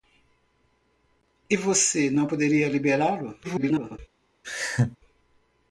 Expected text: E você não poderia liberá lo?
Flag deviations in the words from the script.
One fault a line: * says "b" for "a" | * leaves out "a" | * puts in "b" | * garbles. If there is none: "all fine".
* garbles